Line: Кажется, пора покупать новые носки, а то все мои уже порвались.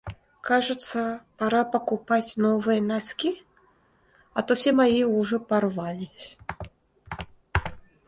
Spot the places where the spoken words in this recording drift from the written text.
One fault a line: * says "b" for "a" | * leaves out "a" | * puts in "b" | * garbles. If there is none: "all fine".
all fine